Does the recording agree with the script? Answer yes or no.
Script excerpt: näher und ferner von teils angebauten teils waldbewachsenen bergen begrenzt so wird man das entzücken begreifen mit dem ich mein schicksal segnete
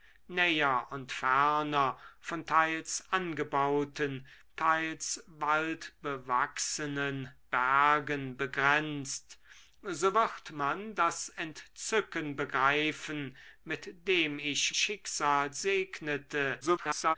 no